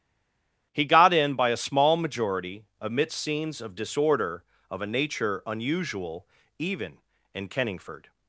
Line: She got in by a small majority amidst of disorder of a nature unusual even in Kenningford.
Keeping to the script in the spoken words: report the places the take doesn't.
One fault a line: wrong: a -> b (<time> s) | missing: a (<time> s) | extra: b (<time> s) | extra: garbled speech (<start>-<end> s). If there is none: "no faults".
wrong: She -> He (0.7 s)
extra: scenes (3.2 s)